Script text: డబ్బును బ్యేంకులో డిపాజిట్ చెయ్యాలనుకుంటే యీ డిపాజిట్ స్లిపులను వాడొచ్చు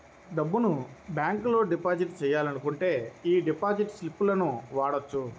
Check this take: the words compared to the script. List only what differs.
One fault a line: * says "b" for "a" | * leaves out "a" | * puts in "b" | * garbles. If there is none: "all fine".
all fine